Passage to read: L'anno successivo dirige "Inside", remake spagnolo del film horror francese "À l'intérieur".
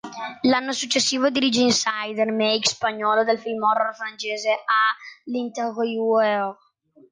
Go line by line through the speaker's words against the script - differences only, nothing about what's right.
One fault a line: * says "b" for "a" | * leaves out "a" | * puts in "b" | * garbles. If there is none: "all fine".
all fine